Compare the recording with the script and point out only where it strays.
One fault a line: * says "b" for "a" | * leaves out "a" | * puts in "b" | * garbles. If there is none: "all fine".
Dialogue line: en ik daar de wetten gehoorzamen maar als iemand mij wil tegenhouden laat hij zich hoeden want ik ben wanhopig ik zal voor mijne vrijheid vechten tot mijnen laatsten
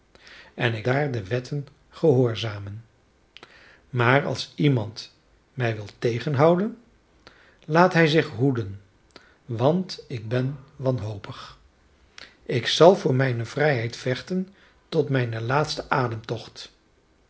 all fine